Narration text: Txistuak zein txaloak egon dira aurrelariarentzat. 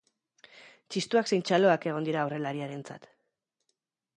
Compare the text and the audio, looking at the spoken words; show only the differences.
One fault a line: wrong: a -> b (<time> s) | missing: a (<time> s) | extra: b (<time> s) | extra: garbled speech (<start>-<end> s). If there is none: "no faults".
no faults